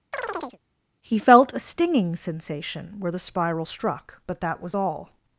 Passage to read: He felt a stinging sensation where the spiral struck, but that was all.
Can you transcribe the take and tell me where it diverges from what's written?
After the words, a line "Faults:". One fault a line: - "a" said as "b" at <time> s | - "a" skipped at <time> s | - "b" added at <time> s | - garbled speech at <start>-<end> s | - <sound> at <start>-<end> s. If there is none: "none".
He felt a stinging sensation where the spiral struck, but that was all.
Faults:
- chirp at 0.1-0.6 s